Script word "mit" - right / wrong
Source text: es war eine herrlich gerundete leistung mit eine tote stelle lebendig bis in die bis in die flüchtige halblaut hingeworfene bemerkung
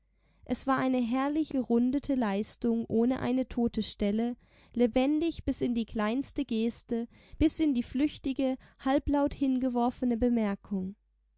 wrong